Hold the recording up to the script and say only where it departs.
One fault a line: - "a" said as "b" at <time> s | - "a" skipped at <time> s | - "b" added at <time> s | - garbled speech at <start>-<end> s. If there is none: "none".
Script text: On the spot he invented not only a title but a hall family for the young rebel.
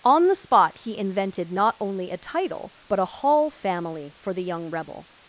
none